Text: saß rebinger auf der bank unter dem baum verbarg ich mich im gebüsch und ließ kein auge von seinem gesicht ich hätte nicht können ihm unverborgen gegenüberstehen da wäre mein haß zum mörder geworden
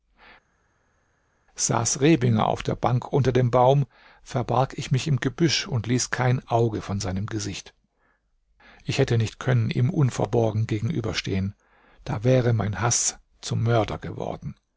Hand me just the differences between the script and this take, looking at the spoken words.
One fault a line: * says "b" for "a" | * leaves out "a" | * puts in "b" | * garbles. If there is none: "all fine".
all fine